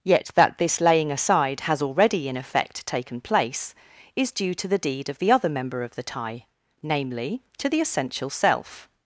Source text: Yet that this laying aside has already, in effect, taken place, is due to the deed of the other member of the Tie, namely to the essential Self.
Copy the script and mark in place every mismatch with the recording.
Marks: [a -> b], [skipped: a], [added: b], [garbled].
Yet that this laying aside has already, in effect, taken place, is due to the deed of the other member of the Tie, namely to the essential Self.